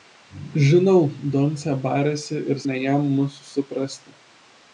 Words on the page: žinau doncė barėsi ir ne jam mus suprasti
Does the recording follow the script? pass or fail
pass